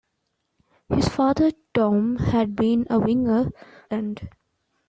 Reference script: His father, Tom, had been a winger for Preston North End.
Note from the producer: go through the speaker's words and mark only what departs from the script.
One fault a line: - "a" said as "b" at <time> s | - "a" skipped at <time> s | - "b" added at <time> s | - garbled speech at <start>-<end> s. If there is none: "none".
- "for Preston North" skipped at 3.5 s